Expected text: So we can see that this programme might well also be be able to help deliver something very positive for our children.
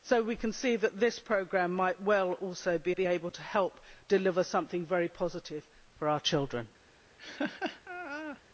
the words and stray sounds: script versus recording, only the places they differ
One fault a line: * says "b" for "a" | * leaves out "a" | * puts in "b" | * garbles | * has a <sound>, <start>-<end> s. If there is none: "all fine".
* has a laugh, 7.2-8.4 s